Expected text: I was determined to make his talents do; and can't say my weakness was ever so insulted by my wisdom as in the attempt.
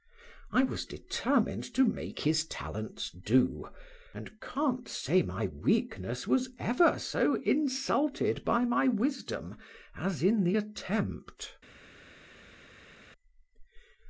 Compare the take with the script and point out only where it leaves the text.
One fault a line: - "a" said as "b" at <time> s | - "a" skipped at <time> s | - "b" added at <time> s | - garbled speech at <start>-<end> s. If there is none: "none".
none